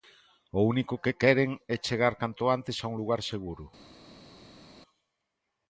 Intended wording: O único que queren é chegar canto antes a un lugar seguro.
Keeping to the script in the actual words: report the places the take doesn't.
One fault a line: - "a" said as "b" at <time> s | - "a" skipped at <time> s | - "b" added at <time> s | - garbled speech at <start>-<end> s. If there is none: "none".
none